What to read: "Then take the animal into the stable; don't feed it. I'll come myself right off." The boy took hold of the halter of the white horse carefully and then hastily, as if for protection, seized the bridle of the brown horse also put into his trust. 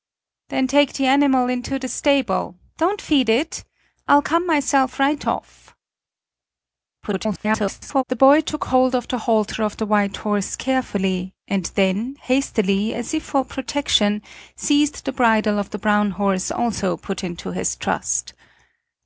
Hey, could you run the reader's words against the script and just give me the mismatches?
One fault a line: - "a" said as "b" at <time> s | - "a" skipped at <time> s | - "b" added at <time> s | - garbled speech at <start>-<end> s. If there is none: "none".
- garbled speech at 7.0-8.0 s